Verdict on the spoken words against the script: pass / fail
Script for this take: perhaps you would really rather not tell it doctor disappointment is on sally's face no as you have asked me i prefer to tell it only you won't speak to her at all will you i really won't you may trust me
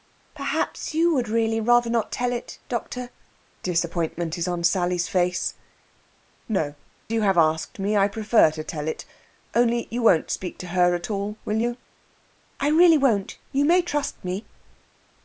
fail